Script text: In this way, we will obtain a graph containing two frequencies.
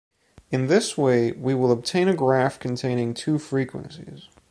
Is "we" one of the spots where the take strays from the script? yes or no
no